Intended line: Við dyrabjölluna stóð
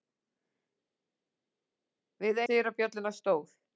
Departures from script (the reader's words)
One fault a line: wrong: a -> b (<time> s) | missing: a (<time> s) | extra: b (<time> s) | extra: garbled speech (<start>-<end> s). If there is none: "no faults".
no faults